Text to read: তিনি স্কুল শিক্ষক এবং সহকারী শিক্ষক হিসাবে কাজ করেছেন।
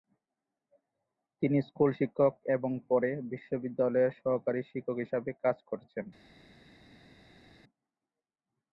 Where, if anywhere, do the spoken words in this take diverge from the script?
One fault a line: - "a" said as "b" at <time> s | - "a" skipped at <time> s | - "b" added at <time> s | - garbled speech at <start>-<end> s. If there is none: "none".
- "পরে বিশ্ববিদ্যালয়ের" added at 2.9 s